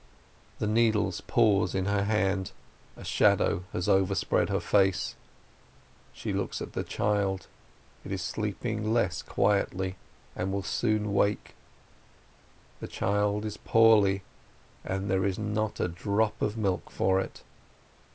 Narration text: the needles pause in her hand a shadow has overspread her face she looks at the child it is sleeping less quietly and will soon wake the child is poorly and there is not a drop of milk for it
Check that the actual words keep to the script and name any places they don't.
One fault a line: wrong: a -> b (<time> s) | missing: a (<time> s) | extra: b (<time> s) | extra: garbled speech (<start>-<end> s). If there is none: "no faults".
no faults